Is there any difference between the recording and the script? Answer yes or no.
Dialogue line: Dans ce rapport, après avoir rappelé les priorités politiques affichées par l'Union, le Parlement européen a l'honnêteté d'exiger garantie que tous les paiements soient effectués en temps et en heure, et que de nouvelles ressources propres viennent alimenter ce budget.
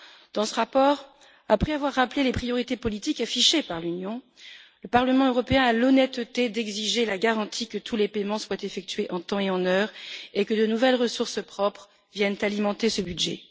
yes